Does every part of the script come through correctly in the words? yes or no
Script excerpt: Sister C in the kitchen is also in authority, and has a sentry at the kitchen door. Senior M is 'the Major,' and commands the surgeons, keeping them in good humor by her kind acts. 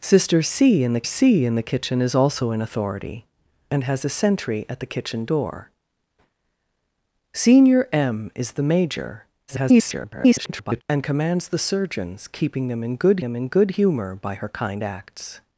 no